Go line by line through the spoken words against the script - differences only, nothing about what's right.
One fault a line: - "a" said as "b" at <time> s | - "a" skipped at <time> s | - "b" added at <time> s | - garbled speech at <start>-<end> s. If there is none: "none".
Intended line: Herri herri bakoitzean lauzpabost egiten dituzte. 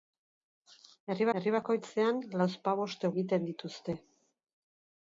none